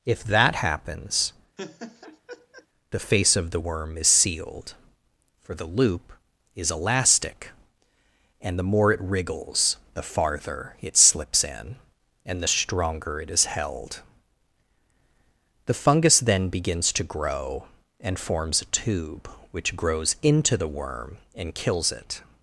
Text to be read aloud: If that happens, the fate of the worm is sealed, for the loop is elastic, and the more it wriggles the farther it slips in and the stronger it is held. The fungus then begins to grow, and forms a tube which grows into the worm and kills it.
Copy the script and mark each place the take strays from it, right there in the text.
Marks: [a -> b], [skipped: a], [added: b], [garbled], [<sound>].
If that happens, [laugh] the [fate -> face] of the worm is sealed, for the loop is elastic, and the more it wriggles the farther it slips in and the stronger it is held. The fungus then begins to grow, and forms a tube which grows into the worm and kills it.